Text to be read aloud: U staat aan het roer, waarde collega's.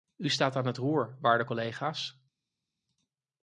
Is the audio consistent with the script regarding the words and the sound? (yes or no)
yes